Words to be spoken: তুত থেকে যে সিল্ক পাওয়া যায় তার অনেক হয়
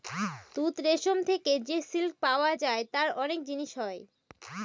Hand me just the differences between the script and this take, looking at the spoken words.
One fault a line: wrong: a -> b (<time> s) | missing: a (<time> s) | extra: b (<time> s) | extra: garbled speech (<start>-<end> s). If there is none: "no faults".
extra: রেশম (0.8 s)
extra: জিনিস (3.4 s)